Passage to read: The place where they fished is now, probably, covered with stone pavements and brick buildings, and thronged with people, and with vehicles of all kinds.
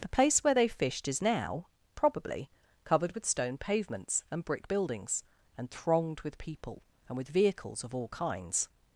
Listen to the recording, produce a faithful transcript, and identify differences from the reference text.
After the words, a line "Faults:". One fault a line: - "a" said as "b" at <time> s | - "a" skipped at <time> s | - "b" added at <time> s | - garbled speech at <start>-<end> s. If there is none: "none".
The place where they fished is now, probably, covered with stone pavements and brick buildings, and thronged with people, and with vehicles of all kinds.
Faults:
none